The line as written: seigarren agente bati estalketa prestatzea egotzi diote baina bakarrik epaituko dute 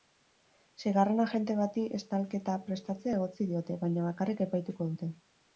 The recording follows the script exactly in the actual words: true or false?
true